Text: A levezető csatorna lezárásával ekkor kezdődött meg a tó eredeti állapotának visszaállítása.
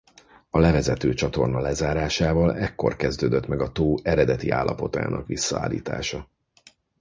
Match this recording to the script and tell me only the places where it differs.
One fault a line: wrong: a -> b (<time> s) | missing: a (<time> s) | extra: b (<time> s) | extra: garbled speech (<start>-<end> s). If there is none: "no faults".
no faults